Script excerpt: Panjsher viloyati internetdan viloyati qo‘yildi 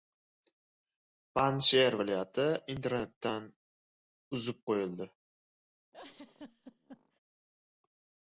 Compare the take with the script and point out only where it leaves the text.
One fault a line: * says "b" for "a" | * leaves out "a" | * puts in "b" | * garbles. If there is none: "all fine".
* says "uzib" for "viloyati"